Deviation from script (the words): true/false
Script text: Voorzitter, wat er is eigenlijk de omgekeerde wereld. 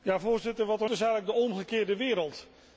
false